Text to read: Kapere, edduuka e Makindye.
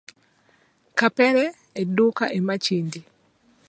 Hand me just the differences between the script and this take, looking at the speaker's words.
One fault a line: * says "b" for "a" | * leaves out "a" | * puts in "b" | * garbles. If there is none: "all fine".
all fine